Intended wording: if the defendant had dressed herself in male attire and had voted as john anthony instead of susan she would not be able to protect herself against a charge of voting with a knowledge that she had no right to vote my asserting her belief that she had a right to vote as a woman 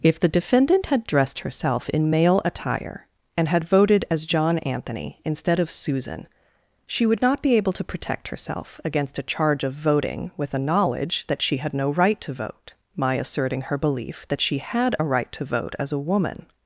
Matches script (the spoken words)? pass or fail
pass